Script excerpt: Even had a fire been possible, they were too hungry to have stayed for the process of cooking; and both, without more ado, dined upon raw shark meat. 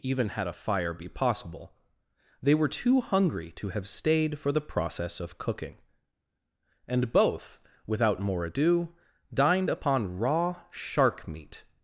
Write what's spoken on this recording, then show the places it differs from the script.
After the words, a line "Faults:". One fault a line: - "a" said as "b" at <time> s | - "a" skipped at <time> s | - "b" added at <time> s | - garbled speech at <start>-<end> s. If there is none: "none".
Even had a fire be possible, they were too hungry to have stayed for the process of cooking; and both, without more ado, dined upon raw shark meat.
Faults:
- "been" said as "be" at 0.9 s